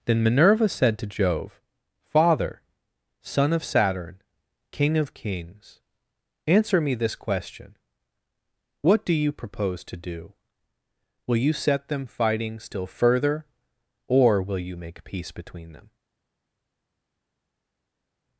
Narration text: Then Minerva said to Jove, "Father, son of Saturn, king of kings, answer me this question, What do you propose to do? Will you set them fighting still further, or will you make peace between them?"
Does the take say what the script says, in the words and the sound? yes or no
yes